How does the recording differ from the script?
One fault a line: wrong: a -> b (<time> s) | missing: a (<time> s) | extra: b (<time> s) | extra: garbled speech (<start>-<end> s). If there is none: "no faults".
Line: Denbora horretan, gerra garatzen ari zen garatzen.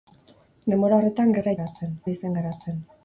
no faults